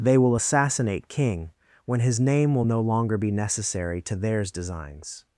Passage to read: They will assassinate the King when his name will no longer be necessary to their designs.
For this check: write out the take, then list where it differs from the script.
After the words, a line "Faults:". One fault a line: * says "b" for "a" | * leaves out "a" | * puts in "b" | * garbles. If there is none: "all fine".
They will assassinate King when his name will no longer be necessary to theirs designs.
Faults:
* leaves out "the"
* says "theirs" for "their"